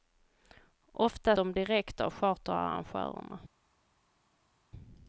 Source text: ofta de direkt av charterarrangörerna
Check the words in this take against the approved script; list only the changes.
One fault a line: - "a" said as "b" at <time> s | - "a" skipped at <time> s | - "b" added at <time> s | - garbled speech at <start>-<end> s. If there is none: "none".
none